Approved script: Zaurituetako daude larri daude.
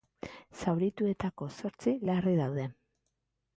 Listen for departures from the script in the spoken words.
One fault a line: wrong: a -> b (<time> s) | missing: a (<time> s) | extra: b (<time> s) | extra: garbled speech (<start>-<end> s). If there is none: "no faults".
wrong: daude -> zortzi (1.6 s)